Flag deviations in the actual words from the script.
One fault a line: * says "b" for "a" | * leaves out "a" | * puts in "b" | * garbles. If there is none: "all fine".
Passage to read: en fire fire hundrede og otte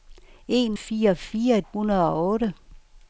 all fine